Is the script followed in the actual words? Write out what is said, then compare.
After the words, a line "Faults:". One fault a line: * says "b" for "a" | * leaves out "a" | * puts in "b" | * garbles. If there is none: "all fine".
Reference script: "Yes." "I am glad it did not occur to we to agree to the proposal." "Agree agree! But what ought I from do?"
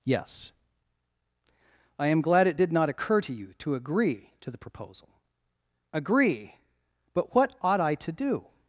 "Yes." "I am glad it did not occur to you to agree to the proposal." "Agree! But what ought I to do?"
Faults:
* says "you" for "we"
* leaves out "agree"
* says "to" for "from"